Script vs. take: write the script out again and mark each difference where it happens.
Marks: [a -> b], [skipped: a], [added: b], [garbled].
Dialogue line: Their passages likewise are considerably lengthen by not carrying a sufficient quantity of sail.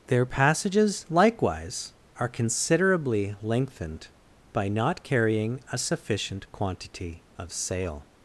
Their passages likewise are considerably [lengthen -> lengthened] by not carrying a sufficient quantity of sail.